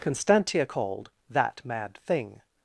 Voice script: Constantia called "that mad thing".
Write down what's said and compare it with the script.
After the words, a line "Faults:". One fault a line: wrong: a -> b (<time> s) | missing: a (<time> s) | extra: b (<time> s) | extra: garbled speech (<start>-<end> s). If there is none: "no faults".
Constantia called "that mad thing".
Faults:
no faults